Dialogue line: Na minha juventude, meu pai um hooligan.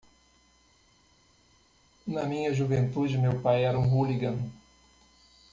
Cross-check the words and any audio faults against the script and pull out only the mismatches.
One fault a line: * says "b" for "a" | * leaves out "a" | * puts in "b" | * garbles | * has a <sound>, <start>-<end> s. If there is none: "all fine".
* puts in "era"